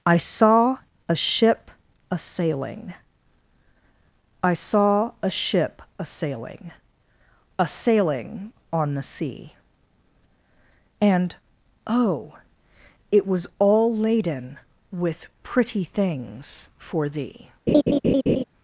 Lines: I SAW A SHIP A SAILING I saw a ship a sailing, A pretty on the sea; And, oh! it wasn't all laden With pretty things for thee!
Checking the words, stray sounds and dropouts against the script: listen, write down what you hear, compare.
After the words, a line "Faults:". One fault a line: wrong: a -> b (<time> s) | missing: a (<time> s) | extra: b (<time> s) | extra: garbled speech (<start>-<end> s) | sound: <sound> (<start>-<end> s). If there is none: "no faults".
I SAW A SHIP A SAILING I saw a ship a sailing, A sailing on the sea; And, oh! it was all laden With pretty things for thee!
Faults:
wrong: pretty -> sailing (7.7 s)
wrong: wasn't -> was (13.3 s)
sound: laugh (17.7-18.4 s)